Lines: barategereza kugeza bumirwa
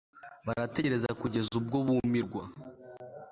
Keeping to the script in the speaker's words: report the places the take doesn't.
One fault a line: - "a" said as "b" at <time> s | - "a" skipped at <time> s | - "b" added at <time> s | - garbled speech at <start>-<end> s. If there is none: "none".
- "ubwo" added at 1.6 s